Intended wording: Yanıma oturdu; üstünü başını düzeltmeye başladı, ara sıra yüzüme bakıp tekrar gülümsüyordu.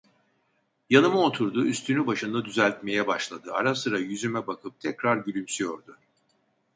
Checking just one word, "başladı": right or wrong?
right